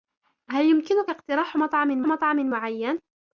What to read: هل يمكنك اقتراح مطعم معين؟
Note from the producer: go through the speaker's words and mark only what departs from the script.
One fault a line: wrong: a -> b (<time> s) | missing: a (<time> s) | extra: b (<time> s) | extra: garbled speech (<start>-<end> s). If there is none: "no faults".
extra: مطعم (2.0 s)